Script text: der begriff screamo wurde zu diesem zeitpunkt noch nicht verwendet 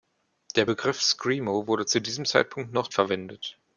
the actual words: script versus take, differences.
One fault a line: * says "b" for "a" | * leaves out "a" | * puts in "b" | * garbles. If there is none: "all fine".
* leaves out "nicht"